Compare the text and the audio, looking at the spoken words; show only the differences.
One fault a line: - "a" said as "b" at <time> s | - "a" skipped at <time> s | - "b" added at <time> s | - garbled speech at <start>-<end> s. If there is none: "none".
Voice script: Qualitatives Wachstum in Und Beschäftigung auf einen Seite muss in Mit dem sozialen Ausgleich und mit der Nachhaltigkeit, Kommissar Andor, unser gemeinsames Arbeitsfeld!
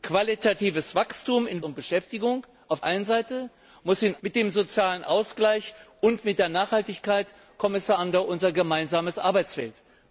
none